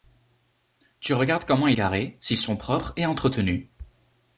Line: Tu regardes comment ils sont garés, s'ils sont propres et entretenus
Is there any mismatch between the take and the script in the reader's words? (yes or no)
yes